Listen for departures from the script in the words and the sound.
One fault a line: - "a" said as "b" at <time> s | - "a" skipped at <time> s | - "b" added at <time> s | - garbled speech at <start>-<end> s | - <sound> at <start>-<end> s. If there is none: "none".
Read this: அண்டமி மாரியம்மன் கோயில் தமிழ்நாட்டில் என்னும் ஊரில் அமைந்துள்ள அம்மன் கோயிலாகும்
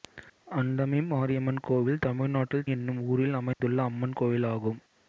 - dropout at 3.5-3.6 s